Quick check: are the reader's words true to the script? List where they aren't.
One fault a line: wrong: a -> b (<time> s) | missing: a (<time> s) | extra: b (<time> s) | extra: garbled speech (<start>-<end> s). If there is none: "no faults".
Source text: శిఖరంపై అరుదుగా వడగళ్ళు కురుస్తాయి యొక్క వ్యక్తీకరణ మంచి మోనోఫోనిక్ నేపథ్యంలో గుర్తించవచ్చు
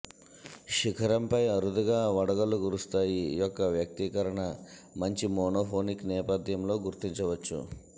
no faults